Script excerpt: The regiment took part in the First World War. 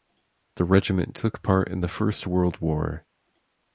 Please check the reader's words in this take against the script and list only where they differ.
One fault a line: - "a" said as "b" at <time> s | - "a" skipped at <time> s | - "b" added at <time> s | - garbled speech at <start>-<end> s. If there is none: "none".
none